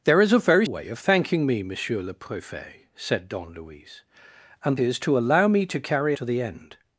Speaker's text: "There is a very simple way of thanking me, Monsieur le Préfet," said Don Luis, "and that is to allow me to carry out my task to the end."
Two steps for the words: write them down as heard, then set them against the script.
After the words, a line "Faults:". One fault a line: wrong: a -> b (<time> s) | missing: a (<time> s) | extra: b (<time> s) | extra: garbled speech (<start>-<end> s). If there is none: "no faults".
"There is a very way of thanking me, Monsieur le Préfet," said Don Luis, "and is to allow me to carry to the end."
Faults:
missing: simple (0.7 s)
missing: that (4.8 s)
missing: out my task (6.2 s)